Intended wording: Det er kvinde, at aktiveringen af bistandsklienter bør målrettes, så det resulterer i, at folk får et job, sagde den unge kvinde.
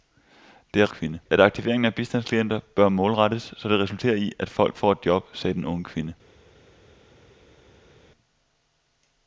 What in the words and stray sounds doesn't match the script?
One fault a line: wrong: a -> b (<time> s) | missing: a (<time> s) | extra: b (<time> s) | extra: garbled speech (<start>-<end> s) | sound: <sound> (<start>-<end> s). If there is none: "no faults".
no faults